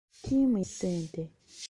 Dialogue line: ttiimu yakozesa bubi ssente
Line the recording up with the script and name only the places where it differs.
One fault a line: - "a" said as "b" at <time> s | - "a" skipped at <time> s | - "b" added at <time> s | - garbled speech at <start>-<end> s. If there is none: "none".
- "yakozesa bubi" skipped at 0.6 s